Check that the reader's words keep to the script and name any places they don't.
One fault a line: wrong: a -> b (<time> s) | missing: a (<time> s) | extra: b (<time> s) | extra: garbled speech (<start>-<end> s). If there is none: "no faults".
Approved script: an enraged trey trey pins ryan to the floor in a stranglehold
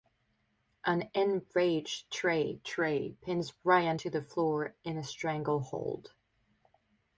no faults